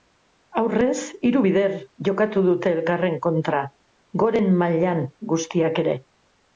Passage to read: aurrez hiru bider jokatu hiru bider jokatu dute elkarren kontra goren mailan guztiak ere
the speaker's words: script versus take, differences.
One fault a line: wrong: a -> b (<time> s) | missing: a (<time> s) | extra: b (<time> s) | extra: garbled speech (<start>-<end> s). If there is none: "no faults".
missing: hiru bider jokatu (2.5 s)